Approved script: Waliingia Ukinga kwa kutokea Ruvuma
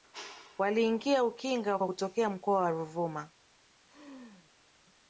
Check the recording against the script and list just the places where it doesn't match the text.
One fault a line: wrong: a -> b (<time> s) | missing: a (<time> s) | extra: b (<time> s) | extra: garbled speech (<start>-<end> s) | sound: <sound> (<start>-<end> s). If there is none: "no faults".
extra: mkoa wa (2.3 s)
sound: laugh (3.8-4.5 s)